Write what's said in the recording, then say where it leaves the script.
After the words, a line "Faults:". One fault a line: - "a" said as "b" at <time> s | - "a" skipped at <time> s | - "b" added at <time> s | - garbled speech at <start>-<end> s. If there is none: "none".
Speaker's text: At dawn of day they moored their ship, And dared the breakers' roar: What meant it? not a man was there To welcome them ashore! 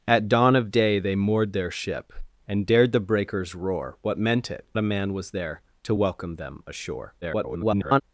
At dawn of day they moored their ship, And dared the breakers' roar: What meant it? a man was there To welcome them ashore! [garbled]
Faults:
- "not" skipped at 4.7 s
- garbled speech at 7.2-8.0 s